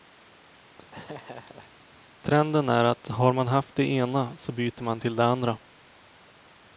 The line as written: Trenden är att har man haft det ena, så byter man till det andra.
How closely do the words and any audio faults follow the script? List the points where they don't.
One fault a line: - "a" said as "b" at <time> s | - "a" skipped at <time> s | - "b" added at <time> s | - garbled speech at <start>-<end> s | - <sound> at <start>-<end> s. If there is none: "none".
- laugh at 0.9-1.7 s